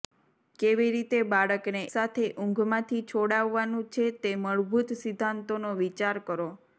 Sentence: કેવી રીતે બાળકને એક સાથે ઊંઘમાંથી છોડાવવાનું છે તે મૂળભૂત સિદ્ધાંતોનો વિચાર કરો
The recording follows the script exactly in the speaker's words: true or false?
false